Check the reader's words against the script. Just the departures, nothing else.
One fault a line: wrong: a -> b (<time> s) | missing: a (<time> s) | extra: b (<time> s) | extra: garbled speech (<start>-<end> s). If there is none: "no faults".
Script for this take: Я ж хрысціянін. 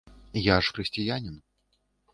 no faults